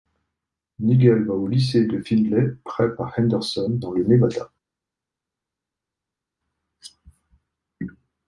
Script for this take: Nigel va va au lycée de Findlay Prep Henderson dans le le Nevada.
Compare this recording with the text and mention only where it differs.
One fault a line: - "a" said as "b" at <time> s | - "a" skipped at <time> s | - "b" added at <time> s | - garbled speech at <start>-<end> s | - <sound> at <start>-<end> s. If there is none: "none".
- "va" skipped at 1.4 s
- "à" added at 3.0 s
- "le" skipped at 4.0 s